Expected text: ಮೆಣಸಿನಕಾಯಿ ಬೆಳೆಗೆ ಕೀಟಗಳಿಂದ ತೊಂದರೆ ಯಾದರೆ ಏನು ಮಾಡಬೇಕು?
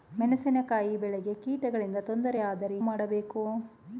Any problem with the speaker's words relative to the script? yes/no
yes